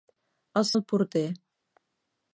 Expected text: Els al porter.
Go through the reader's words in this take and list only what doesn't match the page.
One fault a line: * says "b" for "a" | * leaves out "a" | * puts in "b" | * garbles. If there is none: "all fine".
all fine